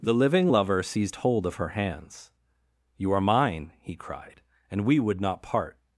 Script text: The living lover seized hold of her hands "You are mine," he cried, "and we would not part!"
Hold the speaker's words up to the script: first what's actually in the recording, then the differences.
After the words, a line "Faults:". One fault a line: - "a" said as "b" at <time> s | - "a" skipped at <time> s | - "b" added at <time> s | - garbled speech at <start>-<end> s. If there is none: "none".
The living lover seized hold of her hands "You are mine," he cried, "and we would not part!"
Faults:
none